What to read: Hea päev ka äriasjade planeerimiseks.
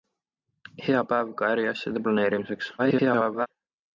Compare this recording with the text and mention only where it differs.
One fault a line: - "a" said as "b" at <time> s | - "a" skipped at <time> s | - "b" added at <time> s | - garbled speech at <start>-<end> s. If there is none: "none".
- garbled speech at 2.8-3.5 s